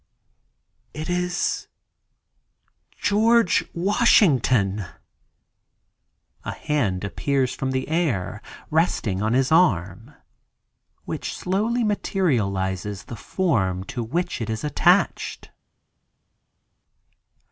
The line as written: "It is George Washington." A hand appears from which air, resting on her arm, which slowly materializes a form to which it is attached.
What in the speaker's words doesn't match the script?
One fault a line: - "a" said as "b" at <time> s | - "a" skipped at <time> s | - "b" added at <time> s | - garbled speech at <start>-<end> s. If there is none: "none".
- "which" said as "the" at 7.7 s
- "her" said as "his" at 9.3 s
- "a" said as "the" at 13.0 s